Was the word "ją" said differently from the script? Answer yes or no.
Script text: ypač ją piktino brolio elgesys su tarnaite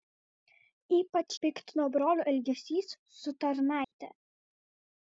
yes